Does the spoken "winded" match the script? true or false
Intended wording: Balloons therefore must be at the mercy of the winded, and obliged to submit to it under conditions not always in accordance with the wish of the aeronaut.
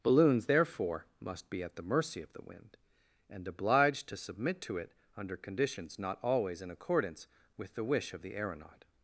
false